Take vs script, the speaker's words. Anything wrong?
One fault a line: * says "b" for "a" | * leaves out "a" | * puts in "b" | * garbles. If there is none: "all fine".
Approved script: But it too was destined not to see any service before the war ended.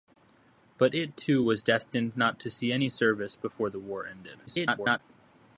* garbles